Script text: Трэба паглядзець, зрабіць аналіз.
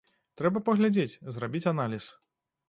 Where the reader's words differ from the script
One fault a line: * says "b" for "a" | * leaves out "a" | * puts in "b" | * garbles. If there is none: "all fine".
all fine